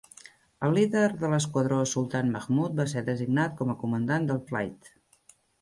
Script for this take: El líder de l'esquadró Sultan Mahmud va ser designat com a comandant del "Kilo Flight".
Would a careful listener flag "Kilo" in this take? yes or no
yes